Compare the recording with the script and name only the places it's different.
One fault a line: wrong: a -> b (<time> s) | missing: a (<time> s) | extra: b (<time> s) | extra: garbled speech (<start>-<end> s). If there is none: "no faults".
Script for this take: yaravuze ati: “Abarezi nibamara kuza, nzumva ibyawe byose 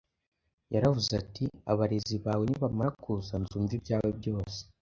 extra: bawe (2.2 s)